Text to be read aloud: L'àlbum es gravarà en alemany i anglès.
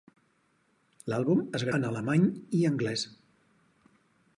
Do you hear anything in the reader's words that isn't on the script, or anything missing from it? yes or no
yes